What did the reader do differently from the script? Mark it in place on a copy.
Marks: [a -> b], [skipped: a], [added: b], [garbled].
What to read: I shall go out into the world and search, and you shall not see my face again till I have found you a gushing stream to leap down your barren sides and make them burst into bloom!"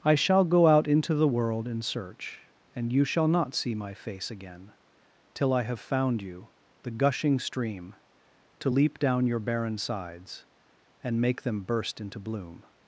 I shall go out into the world [and -> in] search, and you shall not see my face again till I have found you [a -> the] gushing stream to leap down your barren sides and make them burst into bloom!"